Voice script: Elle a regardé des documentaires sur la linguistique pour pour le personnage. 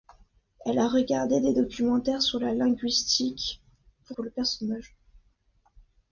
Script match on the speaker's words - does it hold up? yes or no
yes